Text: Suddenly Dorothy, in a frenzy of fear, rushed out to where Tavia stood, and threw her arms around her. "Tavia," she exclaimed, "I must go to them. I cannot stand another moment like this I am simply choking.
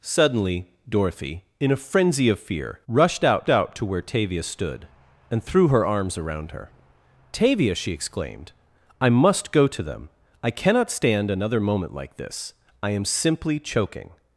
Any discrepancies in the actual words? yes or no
yes